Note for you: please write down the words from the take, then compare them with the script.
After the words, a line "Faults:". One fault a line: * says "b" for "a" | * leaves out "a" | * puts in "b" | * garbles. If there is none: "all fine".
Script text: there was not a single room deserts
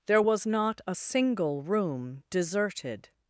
there was not a single room deserted
Faults:
* says "deserted" for "deserts"